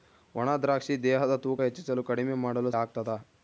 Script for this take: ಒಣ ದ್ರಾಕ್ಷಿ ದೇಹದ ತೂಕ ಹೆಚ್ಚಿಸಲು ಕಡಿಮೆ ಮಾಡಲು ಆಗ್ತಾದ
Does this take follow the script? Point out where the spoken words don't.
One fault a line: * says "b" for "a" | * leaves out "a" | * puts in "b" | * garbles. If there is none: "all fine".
all fine